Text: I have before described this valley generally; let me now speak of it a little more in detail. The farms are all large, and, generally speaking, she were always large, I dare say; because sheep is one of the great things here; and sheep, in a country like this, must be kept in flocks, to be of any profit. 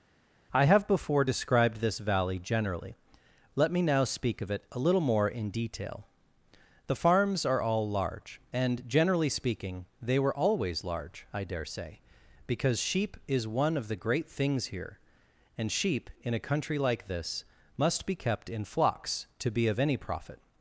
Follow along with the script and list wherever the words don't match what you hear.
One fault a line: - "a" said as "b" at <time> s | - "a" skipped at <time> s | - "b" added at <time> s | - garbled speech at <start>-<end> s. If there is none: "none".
- "she" said as "they" at 10.0 s